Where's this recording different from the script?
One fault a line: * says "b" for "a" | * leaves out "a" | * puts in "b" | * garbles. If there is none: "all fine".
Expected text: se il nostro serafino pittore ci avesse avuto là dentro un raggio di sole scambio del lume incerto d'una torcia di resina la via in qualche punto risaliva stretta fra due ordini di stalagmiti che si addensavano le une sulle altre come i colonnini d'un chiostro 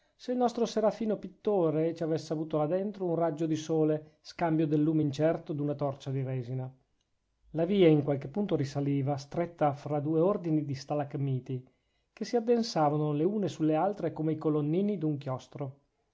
all fine